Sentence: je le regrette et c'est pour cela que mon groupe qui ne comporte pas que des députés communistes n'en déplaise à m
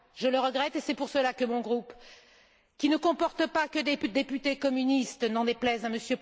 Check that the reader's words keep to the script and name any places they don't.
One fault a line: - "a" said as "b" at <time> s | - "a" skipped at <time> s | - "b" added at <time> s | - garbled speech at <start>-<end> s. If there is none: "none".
none